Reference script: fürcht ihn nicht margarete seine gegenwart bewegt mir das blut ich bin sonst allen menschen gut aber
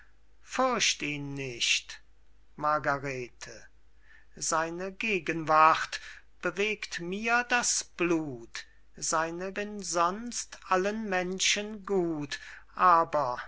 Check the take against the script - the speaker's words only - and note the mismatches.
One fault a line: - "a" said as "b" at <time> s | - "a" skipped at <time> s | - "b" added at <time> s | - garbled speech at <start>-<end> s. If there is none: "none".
- "ich" said as "seine" at 9.0 s